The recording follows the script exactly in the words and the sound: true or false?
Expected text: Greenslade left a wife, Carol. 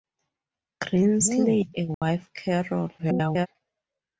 false